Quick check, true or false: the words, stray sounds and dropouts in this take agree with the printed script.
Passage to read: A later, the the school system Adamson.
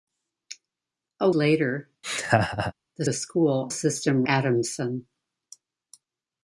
false